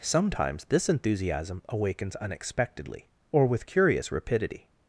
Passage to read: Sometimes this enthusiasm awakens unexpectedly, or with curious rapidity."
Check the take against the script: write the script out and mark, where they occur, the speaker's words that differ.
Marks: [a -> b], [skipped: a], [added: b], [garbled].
Sometimes this enthusiasm awakens unexpectedly, or with curious rapidity."